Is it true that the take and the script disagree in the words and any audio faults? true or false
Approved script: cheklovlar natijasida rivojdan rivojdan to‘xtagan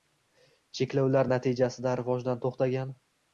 true